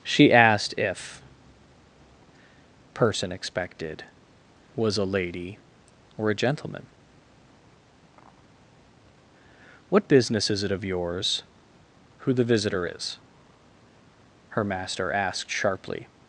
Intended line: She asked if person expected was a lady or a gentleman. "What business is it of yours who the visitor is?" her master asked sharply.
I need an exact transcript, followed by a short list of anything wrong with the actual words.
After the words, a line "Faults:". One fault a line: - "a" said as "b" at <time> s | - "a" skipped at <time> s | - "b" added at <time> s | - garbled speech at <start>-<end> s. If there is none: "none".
She asked if person expected was a lady or a gentleman. "What business is it of yours who the visitor is?" her master asked sharply.
Faults:
none